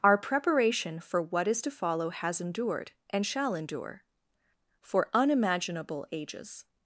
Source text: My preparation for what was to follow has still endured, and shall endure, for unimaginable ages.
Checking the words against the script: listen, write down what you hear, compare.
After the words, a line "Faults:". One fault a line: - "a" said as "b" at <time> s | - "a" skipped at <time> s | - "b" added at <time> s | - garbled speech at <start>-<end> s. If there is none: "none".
Our preparation for what is to follow has endured, and shall endure, for unimaginable ages.
Faults:
- "My" said as "Our" at 0.0 s
- "was" said as "is" at 1.5 s
- "still" skipped at 2.4 s